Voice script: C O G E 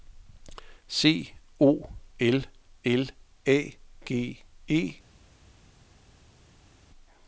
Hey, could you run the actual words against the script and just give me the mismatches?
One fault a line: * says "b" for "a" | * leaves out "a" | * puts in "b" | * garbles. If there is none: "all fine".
* puts in "L L A"